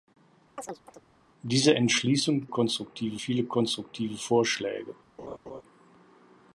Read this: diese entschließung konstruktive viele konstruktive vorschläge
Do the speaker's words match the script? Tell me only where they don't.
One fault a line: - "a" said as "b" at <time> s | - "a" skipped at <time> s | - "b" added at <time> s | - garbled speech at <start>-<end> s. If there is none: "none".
none